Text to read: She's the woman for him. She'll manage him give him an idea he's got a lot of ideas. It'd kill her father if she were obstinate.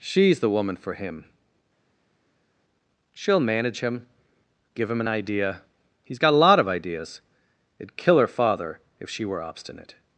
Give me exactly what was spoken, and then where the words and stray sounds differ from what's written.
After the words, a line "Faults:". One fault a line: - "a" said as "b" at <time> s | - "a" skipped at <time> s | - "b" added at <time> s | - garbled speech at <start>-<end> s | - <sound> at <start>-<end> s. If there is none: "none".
She's the woman for him. She'll manage him give him an idea he's got a lot of ideas. It'd kill her father if she were obstinate.
Faults:
none